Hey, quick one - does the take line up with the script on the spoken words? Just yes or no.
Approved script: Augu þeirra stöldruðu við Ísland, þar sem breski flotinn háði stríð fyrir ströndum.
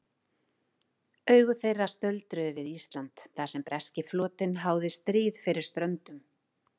yes